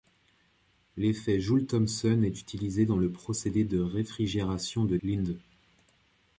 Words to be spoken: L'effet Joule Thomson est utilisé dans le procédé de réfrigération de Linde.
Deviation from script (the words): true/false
false